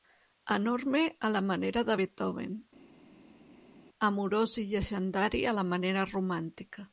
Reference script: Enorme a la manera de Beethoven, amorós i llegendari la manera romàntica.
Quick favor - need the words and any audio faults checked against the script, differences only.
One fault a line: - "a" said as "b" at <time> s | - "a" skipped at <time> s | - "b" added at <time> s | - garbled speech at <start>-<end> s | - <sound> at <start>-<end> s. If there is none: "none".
- "a" added at 5.5 s